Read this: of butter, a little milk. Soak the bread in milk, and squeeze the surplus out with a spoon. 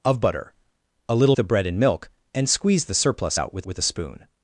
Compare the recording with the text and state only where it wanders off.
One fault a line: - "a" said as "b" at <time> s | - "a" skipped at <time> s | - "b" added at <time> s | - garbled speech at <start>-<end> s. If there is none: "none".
- "milk Soak" skipped at 1.4 s
- "with" added at 3.6 s